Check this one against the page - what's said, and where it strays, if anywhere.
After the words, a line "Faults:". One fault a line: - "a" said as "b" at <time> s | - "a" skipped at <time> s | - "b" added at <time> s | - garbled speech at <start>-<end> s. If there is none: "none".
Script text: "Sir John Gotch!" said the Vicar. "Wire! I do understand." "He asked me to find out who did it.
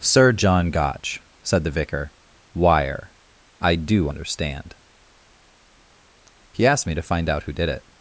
"Sir John Gotch!" said the Vicar. "Wire! I do understand." "He asked me to find out who did it.
Faults:
none